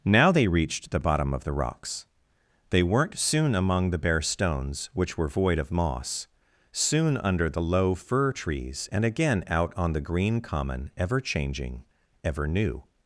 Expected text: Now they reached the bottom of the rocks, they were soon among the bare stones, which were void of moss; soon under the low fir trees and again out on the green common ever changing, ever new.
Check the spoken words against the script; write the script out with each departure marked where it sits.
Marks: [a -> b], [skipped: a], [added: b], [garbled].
Now they reached the bottom of the rocks, they [were -> weren't] soon among the bare stones, which were void of moss; soon under the low fir trees and again out on the green common ever changing, ever new.